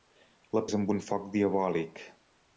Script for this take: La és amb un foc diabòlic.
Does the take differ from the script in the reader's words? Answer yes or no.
no